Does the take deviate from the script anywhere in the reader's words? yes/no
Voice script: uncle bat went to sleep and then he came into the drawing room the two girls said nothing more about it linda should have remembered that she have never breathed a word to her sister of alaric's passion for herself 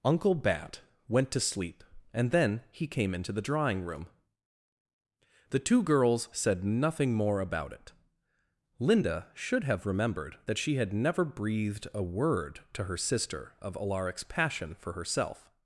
yes